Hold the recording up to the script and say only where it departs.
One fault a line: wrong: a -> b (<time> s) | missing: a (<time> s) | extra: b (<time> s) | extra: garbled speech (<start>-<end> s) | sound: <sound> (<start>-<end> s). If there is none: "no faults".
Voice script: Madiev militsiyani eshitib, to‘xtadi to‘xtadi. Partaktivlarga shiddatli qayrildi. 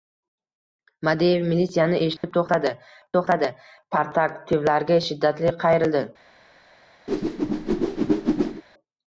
sound: dropout (2.2-2.2 s)
sound: whoosh (7.1-8.6 s)